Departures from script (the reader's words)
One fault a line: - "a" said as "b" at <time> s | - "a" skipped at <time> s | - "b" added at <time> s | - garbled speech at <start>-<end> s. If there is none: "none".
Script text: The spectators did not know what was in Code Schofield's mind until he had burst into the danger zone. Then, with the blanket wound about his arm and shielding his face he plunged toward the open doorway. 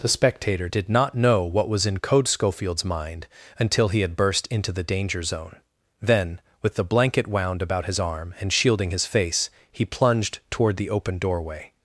- "spectators" said as "spectator" at 0.1 s